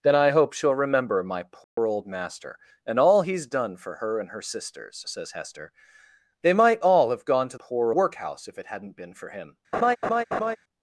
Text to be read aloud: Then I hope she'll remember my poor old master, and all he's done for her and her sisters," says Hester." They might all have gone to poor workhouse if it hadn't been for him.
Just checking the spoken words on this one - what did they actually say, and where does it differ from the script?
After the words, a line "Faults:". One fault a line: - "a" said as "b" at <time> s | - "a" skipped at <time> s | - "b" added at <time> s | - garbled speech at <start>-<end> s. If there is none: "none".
Then I hope she'll remember my poor old master, and all he's done for her and her sisters," says Hester." They might all have gone to poor workhouse if it hadn't been for him.
Faults:
none